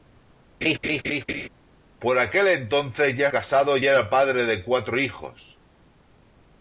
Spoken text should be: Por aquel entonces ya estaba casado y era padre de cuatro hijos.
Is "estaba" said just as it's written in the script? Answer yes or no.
no